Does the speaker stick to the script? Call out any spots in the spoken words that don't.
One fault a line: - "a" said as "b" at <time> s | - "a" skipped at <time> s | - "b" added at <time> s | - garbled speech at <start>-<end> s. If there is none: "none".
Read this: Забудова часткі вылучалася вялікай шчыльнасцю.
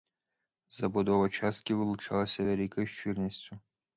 none